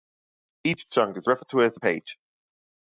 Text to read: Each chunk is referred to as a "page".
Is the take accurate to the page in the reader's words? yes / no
yes